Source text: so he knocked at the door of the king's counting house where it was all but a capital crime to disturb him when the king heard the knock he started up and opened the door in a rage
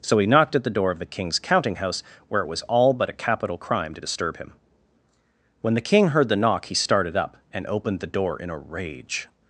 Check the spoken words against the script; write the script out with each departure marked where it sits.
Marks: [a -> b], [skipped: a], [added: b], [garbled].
so he knocked at the door of the king's counting house where it was all but a capital crime to disturb him when the king heard the knock he started up and opened the door in a rage